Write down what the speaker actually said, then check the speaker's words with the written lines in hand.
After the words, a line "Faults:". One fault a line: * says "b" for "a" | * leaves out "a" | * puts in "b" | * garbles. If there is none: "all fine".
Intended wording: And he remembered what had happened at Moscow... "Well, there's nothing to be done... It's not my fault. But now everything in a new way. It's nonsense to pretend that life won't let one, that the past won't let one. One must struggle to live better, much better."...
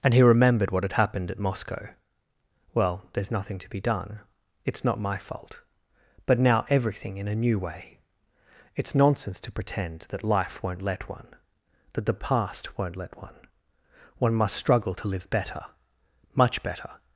And he remembered what had happened at Moscow... "Well, there's nothing to be done... It's not my fault. But now everything in a new way. It's nonsense to pretend that life won't let one, that the past won't let one. One must struggle to live better, much better."...
Faults:
all fine